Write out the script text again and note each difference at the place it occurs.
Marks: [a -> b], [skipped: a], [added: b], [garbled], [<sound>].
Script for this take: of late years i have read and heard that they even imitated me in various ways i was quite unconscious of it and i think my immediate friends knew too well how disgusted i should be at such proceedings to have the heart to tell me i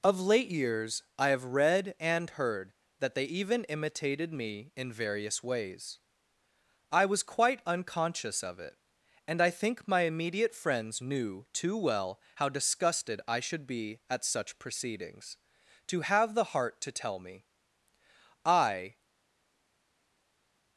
of late years i have read and heard that they even imitated me in various ways i was quite unconscious of it and i think my immediate friends knew too well how disgusted i should be at such proceedings to have the heart to tell me i